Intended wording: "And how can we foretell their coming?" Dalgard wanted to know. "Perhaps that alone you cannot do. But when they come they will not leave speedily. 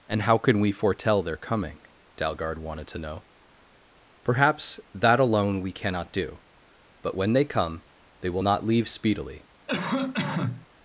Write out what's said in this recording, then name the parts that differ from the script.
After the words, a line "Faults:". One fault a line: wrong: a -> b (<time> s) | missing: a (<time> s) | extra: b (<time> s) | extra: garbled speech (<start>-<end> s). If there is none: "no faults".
"And how can we foretell their coming?" Dalgard wanted to know. "Perhaps that alone we cannot do. But when they come they will not leave speedily.
Faults:
wrong: you -> we (5.6 s)